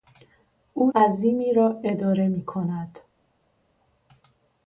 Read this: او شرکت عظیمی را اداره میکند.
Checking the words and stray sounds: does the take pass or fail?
fail